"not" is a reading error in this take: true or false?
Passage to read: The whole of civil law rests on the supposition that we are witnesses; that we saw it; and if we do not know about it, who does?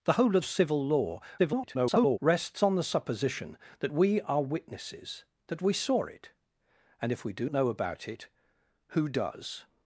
true